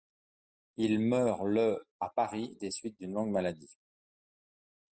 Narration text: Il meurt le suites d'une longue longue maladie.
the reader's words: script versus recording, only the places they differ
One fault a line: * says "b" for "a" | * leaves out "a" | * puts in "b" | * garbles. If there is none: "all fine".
* puts in "à Paris des"
* leaves out "longue"